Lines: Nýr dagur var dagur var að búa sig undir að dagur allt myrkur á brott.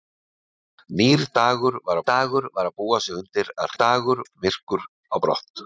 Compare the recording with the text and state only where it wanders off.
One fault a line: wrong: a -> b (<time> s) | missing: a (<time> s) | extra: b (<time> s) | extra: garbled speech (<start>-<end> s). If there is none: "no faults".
no faults